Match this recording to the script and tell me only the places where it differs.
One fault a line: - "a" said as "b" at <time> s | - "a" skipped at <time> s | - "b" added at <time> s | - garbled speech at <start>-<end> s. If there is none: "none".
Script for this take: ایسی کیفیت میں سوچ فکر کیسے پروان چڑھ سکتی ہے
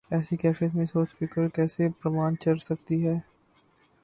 none